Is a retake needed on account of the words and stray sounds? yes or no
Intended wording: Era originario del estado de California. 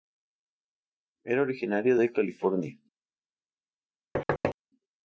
yes